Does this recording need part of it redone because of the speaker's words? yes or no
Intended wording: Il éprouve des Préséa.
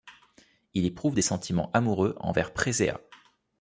yes